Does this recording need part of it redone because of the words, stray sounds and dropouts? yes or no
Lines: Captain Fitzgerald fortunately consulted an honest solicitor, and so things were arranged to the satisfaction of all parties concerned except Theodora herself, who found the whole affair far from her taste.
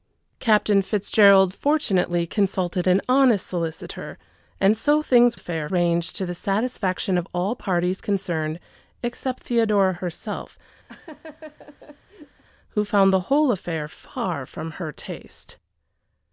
yes